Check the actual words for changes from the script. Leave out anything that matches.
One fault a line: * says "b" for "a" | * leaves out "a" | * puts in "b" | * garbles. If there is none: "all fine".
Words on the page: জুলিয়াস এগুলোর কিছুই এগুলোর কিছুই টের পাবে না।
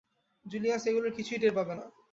* leaves out "এগুলোর কিছুই"